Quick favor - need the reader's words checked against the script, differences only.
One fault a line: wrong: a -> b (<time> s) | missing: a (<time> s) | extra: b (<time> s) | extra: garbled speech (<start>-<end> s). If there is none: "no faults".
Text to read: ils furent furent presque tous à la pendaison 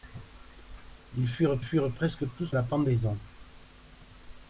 no faults